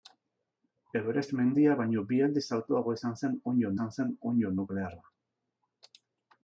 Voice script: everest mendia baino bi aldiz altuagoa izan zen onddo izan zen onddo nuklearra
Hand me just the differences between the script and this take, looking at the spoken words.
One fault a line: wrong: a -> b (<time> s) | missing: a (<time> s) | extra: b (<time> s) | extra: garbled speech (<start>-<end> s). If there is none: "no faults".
no faults